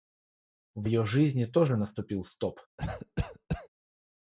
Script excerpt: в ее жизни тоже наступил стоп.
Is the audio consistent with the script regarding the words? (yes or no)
yes